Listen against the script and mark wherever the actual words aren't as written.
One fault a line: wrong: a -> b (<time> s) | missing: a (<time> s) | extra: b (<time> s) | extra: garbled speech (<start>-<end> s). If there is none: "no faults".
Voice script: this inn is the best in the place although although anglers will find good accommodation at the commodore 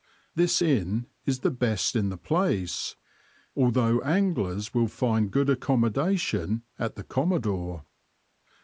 missing: although (4.0 s)